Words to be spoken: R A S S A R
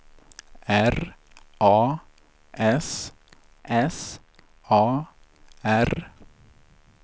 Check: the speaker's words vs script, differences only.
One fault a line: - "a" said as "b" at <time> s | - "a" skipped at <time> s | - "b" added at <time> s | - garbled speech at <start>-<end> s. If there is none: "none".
none